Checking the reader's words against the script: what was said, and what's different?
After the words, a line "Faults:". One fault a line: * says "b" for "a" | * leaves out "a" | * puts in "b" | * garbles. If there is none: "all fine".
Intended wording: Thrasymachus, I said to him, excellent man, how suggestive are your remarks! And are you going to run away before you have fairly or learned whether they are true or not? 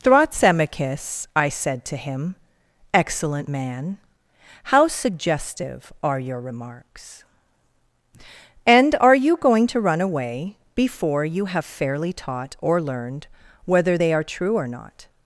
Thrasymachus, I said to him, excellent man, how suggestive are your remarks! And are you going to run away before you have fairly taught or learned whether they are true or not?
Faults:
* puts in "taught"